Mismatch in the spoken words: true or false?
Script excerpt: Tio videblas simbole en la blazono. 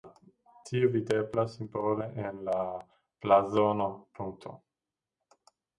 false